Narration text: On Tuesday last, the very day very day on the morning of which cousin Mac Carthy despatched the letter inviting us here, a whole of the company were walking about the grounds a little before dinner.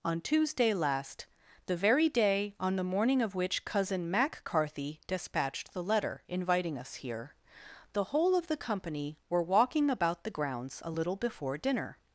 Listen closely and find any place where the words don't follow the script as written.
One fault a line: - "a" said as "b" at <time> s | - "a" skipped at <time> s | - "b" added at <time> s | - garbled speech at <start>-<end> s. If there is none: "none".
- "very day" skipped at 2.5 s
- "a" said as "the" at 7.9 s